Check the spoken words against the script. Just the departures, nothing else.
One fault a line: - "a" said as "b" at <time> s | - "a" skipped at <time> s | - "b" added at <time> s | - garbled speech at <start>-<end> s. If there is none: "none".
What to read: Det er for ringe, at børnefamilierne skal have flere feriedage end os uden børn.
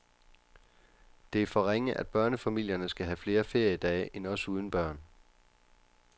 none